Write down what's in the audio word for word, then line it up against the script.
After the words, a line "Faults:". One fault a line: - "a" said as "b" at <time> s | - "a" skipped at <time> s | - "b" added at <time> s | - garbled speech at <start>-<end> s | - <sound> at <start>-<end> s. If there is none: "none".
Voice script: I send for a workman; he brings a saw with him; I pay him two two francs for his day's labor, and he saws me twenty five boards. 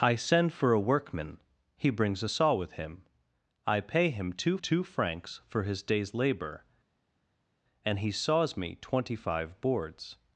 I send for a workman; he brings a saw with him; I pay him two two francs for his day's labor, and he saws me twenty five boards.
Faults:
none